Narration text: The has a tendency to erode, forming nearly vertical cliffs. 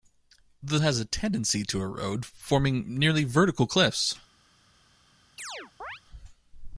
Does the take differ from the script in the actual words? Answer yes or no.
no